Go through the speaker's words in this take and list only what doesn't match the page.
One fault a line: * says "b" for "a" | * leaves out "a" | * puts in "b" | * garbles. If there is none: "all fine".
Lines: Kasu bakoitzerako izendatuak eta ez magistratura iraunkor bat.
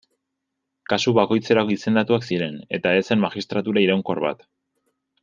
* puts in "ziren"
* puts in "zen"